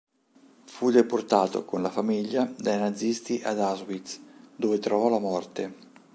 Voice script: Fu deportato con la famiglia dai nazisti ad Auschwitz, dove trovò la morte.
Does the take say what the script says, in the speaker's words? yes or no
yes